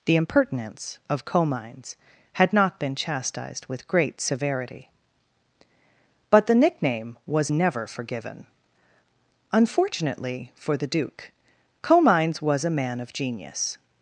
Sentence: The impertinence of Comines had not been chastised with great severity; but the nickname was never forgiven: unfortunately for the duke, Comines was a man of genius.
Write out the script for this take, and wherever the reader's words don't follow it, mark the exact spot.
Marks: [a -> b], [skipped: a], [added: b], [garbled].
The impertinence of Comines had not been chastised with great severity; but the nickname was never forgiven: unfortunately for the duke, Comines was a man of genius.